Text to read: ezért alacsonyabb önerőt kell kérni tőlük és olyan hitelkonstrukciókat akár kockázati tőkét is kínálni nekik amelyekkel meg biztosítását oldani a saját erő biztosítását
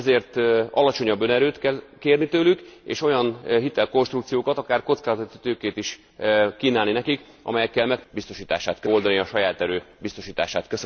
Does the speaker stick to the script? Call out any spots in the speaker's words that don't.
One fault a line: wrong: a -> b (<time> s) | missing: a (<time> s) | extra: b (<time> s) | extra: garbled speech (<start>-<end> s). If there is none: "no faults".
no faults